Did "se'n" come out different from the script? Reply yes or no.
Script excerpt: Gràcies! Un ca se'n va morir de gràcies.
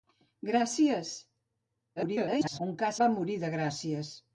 yes